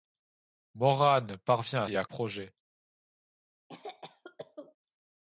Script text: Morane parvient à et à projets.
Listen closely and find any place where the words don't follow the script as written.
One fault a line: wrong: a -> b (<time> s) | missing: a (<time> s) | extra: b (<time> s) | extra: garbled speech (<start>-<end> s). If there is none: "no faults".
no faults